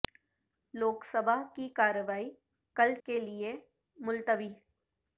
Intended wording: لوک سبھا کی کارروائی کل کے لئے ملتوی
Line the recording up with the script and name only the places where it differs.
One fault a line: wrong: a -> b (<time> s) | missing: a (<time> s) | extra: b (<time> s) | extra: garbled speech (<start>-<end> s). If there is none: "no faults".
no faults